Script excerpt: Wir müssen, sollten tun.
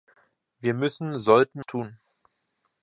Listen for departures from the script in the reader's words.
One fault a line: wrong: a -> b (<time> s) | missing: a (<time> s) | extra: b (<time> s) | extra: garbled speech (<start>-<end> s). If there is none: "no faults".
no faults